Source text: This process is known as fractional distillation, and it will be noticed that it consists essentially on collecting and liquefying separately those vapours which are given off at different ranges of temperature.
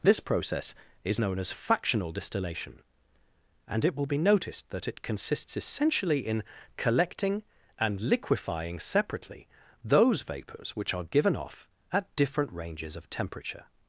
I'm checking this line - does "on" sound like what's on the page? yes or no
no